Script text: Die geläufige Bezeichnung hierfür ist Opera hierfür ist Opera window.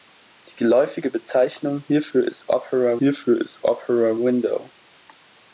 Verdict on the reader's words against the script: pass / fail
pass